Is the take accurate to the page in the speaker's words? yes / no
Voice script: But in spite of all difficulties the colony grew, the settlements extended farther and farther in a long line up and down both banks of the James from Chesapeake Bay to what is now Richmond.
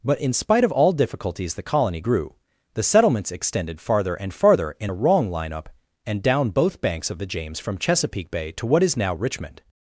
no